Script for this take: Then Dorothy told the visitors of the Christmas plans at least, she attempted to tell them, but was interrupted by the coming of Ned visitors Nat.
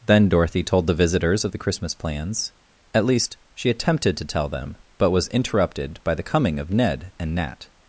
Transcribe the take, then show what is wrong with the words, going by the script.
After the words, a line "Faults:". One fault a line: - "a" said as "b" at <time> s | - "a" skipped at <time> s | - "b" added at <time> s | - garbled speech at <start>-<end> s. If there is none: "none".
Then Dorothy told the visitors of the Christmas plans at least, she attempted to tell them, but was interrupted by the coming of Ned and Nat.
Faults:
- "visitors" said as "and" at 7.2 s